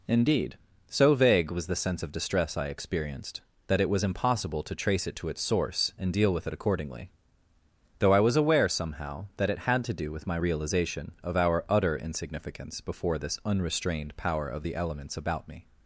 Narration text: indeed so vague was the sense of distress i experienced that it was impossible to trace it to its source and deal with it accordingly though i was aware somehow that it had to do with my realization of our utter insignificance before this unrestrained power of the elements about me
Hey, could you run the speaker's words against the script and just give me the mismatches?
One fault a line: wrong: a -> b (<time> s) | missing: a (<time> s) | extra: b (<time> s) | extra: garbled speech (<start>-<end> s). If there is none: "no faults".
no faults